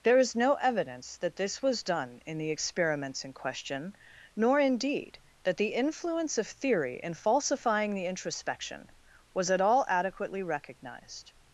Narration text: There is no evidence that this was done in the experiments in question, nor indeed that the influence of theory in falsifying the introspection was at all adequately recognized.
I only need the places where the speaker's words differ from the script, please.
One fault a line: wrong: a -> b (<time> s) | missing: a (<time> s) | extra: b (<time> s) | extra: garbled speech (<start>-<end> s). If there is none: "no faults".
no faults